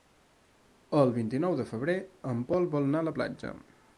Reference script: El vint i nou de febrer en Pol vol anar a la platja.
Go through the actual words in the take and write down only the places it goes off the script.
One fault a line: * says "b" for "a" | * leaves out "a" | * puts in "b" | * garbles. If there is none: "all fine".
all fine